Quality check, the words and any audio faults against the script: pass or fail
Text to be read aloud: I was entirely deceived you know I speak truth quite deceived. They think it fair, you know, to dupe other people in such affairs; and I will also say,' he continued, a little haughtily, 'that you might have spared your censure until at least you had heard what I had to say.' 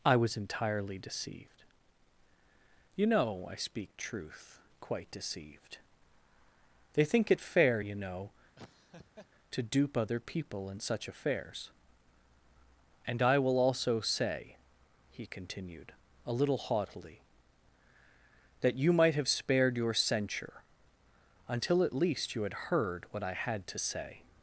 fail